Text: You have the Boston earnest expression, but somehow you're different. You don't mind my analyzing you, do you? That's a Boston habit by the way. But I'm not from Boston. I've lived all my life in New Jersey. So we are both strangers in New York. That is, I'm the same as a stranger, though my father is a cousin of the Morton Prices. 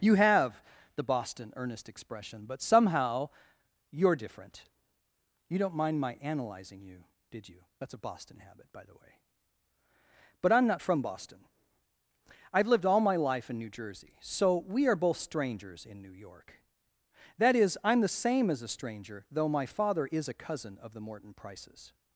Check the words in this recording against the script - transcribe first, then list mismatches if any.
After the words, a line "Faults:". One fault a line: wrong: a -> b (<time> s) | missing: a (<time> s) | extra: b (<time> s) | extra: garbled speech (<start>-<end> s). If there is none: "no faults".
You have the Boston earnest expression, but somehow you're different. You don't mind my analyzing you, did you? That's a Boston habit by the way. But I'm not from Boston. I've lived all my life in New Jersey. So we are both strangers in New York. That is, I'm the same as a stranger, though my father is a cousin of the Morton Prices.
Faults:
wrong: do -> did (7.3 s)